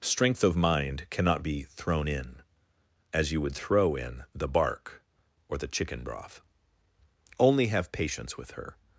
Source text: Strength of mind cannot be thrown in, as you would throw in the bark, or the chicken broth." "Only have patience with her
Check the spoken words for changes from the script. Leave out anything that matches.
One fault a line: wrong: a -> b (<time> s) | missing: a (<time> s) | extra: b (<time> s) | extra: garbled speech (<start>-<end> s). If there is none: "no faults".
no faults